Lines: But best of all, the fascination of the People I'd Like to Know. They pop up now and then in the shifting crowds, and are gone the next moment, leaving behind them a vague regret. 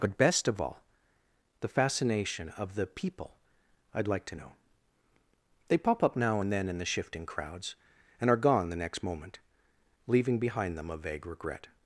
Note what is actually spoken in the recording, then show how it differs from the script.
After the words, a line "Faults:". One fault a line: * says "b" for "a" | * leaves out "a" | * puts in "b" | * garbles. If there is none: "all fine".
But best of all, the fascination of the People I'd Like to Know. They pop up now and then in the shifting crowds, and are gone the next moment, leaving behind them a vague regret.
Faults:
all fine